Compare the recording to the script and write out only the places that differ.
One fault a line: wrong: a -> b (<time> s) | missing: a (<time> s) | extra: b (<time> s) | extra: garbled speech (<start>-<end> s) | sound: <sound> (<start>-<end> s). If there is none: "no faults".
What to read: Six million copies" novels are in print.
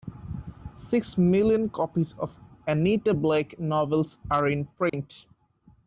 extra: of Anita Blake (2.1 s)
sound: dropout (4.9-4.9 s)